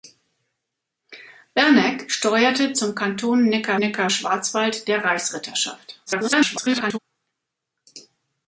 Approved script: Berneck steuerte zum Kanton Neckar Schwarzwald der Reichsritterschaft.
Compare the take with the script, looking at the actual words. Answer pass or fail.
fail